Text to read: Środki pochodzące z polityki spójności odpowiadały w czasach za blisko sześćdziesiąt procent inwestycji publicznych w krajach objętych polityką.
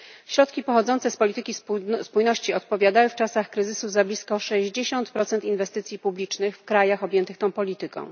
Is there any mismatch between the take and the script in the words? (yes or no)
yes